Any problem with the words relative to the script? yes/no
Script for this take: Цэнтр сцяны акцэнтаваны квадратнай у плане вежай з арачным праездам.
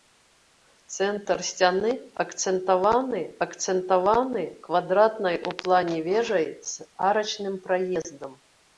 yes